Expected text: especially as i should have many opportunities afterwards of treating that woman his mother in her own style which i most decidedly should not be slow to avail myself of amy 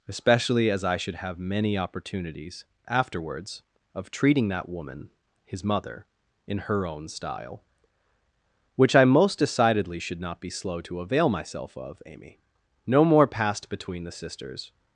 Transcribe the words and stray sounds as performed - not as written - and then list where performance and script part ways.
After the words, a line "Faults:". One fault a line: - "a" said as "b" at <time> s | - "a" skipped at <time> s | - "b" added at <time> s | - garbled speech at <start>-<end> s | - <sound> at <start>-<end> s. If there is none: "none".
especially as i should have many opportunities afterwards of treating that woman his mother in her own style which i most decidedly should not be slow to avail myself of amy no more passed between the sisters
Faults:
- "no more passed between the sisters" added at 12.9 s